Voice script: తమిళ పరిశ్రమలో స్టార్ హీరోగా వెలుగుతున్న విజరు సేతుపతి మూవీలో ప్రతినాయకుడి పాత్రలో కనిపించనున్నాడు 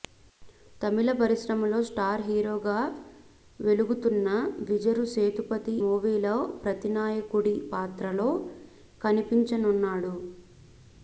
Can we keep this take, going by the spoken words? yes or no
yes